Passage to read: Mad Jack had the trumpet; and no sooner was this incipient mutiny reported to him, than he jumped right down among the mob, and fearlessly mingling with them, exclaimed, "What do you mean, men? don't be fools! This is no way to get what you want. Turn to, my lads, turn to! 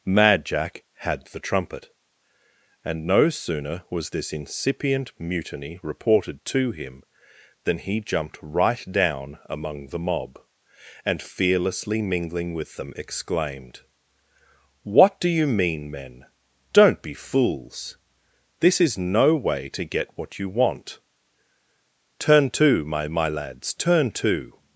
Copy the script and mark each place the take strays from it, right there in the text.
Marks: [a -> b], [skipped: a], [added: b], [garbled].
Mad Jack had the trumpet; and no sooner was this incipient mutiny reported to him, than he jumped right down among the mob, and fearlessly mingling with them, exclaimed, "What do you mean, men? don't be fools! This is no way to get what you want. Turn to, my [added: my] lads, turn to!